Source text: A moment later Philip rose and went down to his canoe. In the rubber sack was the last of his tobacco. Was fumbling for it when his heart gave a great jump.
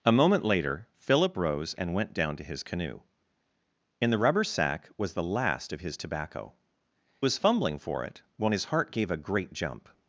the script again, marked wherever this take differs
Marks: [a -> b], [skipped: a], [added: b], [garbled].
A moment later Philip rose and went down to his canoe. In the rubber sack was the last of his tobacco. Was fumbling for it when his heart gave a great jump.